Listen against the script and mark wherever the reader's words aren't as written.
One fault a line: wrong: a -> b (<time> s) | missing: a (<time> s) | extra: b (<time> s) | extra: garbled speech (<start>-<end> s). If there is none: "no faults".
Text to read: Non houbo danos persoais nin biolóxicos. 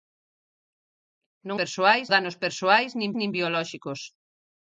wrong: houbo -> persoais (1.6 s)
extra: nin (3.2 s)